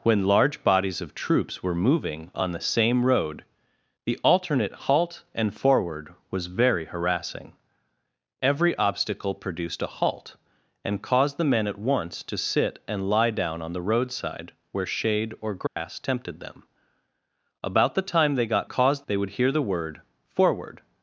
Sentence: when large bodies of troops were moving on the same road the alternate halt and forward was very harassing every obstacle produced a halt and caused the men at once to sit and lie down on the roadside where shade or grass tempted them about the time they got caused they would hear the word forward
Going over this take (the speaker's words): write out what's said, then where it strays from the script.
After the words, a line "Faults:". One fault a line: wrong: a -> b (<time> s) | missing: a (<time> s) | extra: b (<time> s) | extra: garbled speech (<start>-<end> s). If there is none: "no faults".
when large bodies of troops were moving on the same road the alternate halt and forward was very harassing every obstacle produced a halt and caused the men at once to sit and lie down on the roadside where shade or grass tempted them about the time they got caused they would hear the word forward
Faults:
no faults